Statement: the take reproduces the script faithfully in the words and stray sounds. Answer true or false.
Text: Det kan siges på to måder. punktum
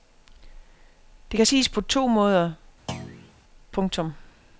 false